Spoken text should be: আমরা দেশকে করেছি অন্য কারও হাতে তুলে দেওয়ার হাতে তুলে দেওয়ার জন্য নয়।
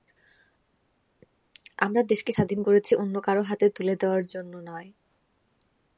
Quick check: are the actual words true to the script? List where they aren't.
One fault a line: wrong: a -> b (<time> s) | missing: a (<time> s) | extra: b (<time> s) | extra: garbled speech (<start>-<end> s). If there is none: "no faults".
extra: স্বাধীন (2.3 s)
missing: হাতে তুলে দেওয়ার (4.2 s)